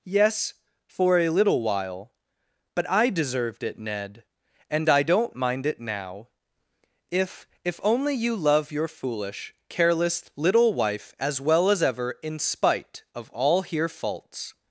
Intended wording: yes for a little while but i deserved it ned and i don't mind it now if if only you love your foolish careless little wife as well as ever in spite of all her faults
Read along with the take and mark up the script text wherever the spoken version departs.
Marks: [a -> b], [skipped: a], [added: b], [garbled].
yes for a little while but i deserved it ned and i don't mind it now if if only you love your foolish careless little wife as well as ever in spite of all [her -> here] faults